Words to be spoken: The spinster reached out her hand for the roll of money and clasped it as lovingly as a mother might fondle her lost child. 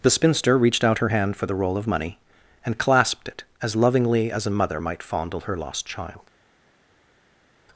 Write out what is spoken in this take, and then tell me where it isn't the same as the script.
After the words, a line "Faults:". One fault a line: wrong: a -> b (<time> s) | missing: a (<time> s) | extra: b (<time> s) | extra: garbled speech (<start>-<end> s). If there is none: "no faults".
The spinster reached out her hand for the roll of money and clasped it as lovingly as a mother might fondle her lost child.
Faults:
no faults